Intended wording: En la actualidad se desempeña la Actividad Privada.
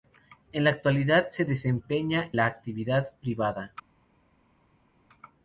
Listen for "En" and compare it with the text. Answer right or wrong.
right